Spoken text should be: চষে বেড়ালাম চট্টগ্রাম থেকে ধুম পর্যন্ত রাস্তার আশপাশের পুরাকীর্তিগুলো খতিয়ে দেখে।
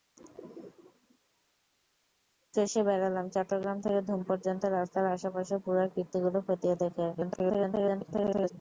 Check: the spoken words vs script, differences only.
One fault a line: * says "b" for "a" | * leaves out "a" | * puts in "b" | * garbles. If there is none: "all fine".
* garbles